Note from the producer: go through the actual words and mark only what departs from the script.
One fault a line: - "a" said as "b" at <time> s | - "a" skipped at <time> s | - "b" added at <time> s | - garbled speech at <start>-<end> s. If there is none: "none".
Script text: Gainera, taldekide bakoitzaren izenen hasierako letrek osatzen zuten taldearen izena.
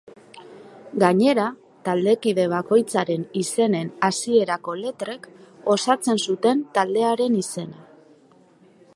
none